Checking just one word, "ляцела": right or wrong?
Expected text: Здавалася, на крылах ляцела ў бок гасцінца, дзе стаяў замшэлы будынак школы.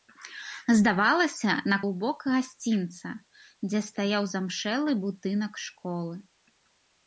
wrong